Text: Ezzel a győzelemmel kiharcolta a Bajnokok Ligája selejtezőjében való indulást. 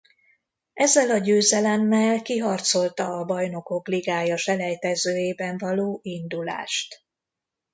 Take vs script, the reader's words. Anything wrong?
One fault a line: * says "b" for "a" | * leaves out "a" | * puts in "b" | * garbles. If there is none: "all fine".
all fine